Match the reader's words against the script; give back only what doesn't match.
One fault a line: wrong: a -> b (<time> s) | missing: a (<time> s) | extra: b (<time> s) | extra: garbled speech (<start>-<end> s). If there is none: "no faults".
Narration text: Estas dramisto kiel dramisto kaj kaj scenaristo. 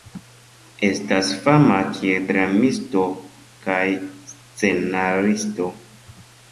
wrong: dramisto -> fama (1.4 s)
missing: kaj (3.9 s)